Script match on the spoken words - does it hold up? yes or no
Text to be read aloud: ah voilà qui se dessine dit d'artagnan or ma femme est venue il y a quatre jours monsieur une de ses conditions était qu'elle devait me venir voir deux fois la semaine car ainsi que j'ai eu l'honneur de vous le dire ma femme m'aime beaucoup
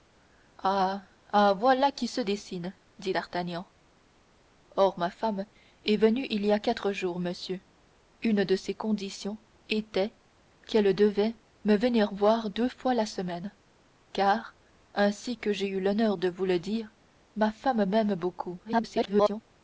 no